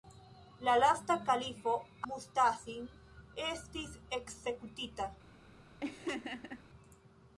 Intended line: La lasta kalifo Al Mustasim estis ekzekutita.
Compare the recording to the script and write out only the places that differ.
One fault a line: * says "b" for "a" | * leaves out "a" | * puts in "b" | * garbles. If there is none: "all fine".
* leaves out "Al"